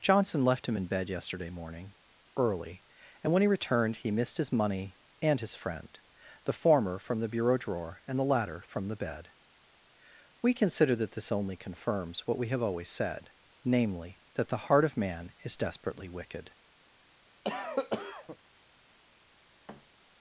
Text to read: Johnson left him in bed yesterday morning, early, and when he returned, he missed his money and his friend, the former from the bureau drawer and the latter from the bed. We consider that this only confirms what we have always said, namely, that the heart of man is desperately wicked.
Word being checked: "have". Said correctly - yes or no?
yes